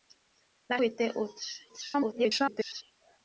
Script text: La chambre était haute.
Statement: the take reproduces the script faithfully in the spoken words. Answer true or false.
false